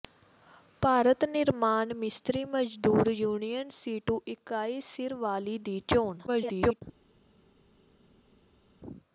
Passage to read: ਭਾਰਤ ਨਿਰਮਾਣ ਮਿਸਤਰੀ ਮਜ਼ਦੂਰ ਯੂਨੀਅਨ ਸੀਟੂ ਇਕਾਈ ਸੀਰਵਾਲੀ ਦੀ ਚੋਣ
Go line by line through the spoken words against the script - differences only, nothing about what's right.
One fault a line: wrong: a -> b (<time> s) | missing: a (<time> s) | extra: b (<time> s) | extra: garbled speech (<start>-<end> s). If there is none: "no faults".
extra: garbled speech (6.3-6.8 s)